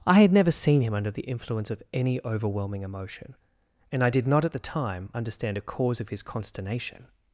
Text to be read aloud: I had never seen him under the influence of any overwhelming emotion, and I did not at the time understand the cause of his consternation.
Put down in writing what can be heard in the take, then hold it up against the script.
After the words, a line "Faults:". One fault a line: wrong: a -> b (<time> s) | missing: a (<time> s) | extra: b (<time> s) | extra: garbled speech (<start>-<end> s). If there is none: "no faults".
I had never seen him under the influence of any overwhelming emotion, and I did not at the time understand a cause of his consternation.
Faults:
wrong: the -> a (5.6 s)